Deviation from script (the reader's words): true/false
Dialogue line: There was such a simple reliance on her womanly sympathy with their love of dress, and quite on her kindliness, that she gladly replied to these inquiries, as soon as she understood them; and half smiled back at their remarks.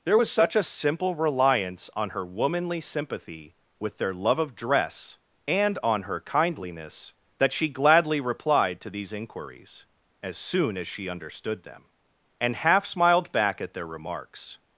true